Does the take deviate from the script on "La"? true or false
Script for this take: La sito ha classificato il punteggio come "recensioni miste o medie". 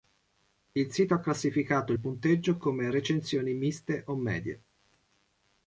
true